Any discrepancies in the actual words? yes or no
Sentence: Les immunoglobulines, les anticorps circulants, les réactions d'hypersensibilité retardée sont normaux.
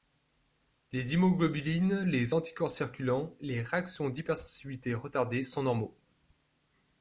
no